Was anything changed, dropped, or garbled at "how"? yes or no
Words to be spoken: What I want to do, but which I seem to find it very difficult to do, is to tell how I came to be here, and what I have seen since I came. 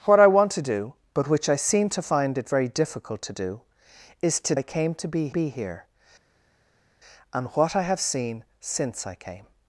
yes